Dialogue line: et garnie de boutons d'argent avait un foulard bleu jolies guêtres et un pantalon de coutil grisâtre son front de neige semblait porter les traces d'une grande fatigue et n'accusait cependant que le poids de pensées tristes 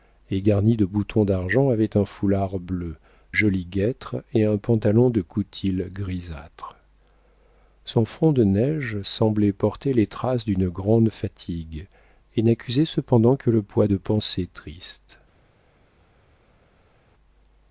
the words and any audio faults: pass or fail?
pass